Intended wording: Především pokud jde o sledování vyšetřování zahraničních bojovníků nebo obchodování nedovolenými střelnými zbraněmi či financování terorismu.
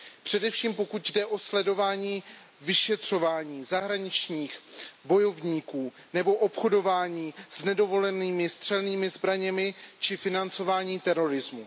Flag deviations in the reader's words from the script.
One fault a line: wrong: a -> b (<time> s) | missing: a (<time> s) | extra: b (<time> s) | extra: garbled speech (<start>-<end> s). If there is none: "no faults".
extra: s (7.5 s)